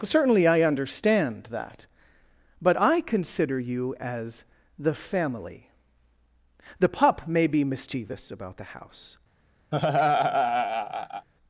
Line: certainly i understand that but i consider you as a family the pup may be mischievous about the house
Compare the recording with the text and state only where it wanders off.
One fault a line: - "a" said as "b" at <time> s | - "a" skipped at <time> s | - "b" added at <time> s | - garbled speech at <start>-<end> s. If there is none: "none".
- "a" said as "the" at 4.8 s